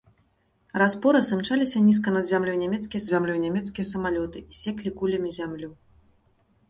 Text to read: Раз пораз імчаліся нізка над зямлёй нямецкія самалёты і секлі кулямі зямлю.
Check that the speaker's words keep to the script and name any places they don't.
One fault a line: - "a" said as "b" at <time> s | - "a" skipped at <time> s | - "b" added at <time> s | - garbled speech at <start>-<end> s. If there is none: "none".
- "зямлёй нямецкія" added at 3.1 s